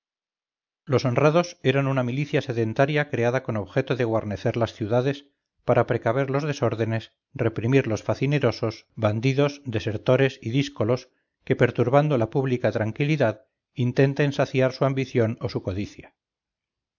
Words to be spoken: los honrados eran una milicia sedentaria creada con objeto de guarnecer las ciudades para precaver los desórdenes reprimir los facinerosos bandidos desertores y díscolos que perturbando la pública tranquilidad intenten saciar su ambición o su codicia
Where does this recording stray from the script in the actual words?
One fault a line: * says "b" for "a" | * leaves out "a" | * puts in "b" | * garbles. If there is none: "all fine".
all fine